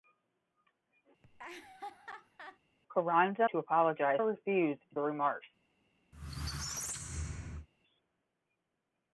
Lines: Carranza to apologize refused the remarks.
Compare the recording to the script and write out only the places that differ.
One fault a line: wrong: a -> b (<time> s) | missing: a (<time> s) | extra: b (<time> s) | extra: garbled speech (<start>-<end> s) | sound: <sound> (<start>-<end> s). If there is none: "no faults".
sound: laugh (1.2-2.6 s)
sound: squeak (6.1-7.7 s)